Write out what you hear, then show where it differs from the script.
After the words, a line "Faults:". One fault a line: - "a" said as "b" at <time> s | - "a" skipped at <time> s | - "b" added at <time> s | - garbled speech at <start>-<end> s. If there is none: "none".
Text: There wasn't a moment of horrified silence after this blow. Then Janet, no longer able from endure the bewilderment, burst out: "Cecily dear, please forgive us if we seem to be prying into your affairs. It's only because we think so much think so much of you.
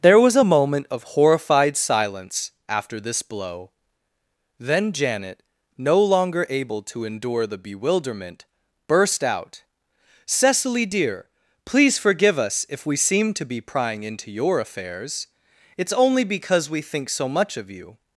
There was a moment of horrified silence after this blow. Then Janet, no longer able to endure the bewilderment, burst out: "Cecily dear, please forgive us if we seem to be prying into your affairs. It's only because we think so much of you.
Faults:
- "wasn't" said as "was" at 0.2 s
- "from" said as "to" at 6.8 s
- "think so much" skipped at 17.6 s